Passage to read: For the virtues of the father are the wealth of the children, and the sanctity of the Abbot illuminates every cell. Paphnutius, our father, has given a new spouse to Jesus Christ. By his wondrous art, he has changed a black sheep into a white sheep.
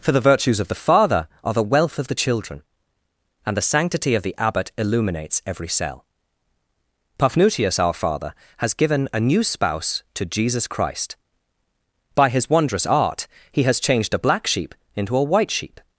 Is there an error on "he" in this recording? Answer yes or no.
no